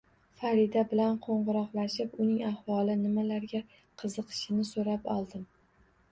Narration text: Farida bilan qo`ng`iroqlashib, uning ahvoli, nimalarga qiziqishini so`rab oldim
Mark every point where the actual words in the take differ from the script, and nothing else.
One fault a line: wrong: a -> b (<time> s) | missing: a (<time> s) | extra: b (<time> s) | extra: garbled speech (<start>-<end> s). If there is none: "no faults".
no faults